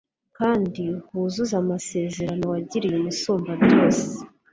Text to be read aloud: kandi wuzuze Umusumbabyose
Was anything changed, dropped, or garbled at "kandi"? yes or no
no